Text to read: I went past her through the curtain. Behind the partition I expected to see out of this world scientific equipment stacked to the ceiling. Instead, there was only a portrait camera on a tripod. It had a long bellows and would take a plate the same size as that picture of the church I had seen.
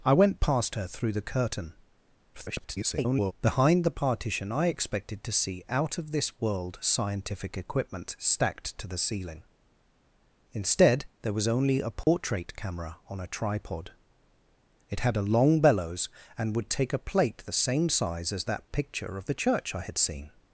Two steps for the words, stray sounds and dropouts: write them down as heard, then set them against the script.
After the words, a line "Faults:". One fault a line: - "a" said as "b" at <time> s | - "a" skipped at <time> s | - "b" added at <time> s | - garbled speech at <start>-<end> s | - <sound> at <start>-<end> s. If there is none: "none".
I went past her through the curtain. [garbled] Behind the partition I expected to see out of this world scientific equipment stacked to the ceiling. Instead, there was only a portrait camera on a tripod. It had a long bellows and would take a plate the same size as that picture of the church I had seen.
Faults:
- garbled speech at 2.3-3.3 s
- dropout at 12.0-12.1 s